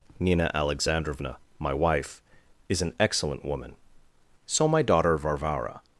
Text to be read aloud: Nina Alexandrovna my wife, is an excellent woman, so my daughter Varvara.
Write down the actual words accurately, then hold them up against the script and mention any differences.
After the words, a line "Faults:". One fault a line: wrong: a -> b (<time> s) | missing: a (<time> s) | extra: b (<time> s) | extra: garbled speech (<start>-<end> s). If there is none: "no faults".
Nina Alexandrovna my wife, is an excellent woman, so my daughter Varvara.
Faults:
no faults